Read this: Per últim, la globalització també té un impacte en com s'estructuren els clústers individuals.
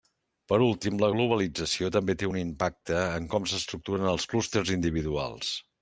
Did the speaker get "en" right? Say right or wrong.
right